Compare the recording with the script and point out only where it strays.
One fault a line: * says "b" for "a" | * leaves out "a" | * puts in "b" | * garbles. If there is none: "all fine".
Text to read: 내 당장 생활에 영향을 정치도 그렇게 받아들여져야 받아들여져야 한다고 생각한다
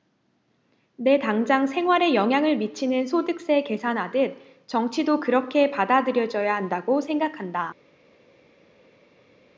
* puts in "미치는 소득세 계산하듯"
* leaves out "받아들여져야"